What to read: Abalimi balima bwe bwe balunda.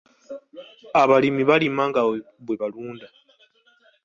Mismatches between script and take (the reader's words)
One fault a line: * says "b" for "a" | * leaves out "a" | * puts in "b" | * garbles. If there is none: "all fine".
* says "nga" for "bwe"